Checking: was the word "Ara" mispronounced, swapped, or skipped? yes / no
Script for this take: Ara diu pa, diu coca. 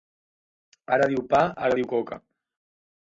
no